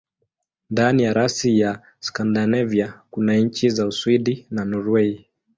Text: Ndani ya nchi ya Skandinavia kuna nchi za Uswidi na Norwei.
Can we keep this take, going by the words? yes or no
no